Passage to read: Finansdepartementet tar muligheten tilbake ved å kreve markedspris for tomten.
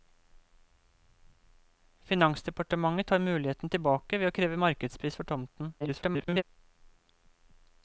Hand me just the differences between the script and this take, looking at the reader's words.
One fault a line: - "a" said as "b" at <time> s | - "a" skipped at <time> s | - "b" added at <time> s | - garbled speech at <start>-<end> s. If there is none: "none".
- garbled speech at 5.8-6.4 s